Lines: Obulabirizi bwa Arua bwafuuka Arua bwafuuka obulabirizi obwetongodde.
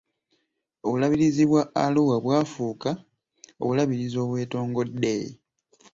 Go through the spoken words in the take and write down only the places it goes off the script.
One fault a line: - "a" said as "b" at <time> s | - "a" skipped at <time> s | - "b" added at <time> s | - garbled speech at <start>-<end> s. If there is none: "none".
- "Arua bwafuuka" skipped at 2.9 s